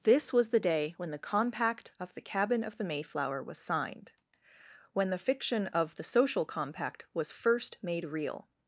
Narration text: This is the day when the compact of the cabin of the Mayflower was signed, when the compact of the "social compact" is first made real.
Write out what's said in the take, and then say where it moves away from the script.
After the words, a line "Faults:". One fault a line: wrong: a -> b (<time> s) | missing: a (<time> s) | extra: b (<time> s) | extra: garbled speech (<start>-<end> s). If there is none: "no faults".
This was the day when the compact of the cabin of the Mayflower was signed, when the fiction of the "social compact" was first made real.
Faults:
wrong: is -> was (0.3 s)
wrong: compact -> fiction (5.2 s)
wrong: is -> was (7.1 s)